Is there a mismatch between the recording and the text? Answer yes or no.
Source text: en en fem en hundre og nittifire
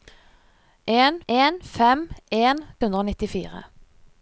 no